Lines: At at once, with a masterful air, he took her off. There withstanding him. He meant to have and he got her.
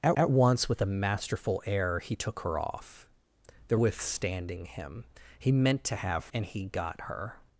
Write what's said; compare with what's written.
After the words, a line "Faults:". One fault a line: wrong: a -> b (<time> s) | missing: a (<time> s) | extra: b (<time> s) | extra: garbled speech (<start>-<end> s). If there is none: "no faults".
At at once, with a masterful air, he took her off. There withstanding him. He meant to have and he got her.
Faults:
no faults